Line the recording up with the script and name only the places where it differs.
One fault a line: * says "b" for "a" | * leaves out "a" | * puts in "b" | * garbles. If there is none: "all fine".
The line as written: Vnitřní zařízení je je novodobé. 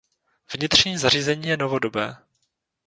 * leaves out "je"